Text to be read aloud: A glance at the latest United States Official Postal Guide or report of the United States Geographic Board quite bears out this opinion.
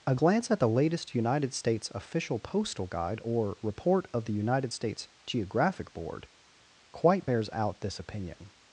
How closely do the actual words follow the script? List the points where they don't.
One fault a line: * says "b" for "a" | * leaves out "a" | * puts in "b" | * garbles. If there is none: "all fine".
all fine